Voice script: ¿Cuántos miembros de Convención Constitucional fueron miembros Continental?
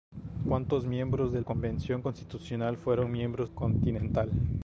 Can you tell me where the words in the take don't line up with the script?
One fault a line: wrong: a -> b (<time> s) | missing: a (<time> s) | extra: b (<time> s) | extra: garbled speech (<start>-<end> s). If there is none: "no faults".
no faults